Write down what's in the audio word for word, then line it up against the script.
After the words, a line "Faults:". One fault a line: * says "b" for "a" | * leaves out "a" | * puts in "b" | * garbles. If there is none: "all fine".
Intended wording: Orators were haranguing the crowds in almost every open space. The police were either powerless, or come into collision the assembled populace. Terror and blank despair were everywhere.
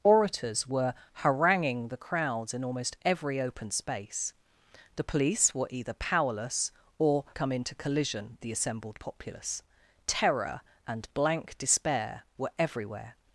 Orators were haranguing the crowds in almost every open space. The police were either powerless, or come into collision the assembled populace. Terror and blank despair were everywhere.
Faults:
all fine